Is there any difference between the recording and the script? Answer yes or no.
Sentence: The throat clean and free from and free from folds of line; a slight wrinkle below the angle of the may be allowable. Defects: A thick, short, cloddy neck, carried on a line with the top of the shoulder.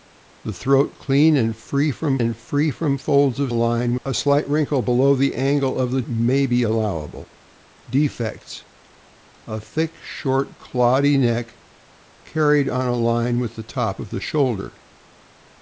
no